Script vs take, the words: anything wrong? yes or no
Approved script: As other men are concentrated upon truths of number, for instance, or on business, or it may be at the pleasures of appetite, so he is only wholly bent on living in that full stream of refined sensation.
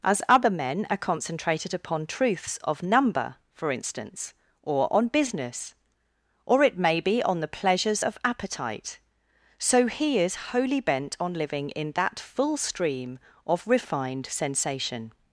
yes